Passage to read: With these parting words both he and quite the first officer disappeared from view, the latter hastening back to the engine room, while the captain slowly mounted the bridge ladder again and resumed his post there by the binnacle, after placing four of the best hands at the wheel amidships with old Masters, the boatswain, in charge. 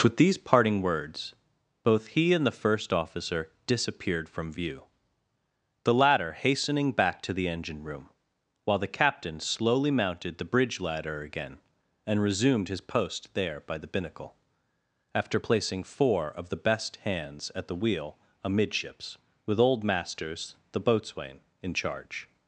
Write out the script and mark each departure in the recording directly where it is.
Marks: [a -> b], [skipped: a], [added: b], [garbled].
With these parting words both he and [skipped: quite] the first officer disappeared from view, the latter hastening back to the engine room, while the captain slowly mounted the bridge ladder again and resumed his post there by the binnacle, after placing four of the best hands at the wheel amidships with old Masters, the boatswain, in charge.